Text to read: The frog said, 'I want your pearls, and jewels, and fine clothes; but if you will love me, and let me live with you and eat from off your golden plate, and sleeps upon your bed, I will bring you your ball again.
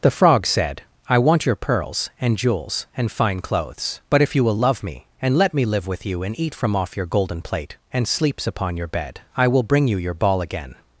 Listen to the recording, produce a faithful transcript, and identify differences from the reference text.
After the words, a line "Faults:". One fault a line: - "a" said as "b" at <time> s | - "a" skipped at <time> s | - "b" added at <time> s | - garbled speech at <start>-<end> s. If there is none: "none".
The frog said, 'I want your pearls, and jewels, and fine clothes; but if you will love me, and let me live with you and eat from off your golden plate, and sleeps upon your bed, I will bring you your ball again.
Faults:
none